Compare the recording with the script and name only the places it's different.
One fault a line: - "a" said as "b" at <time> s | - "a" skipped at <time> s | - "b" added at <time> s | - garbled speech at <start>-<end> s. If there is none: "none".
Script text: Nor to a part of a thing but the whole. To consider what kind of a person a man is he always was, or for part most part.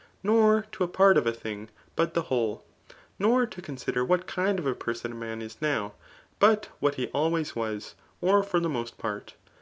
- "Nor" added at 3.2 s
- "now but what" added at 5.6 s
- "part" said as "the" at 8.6 s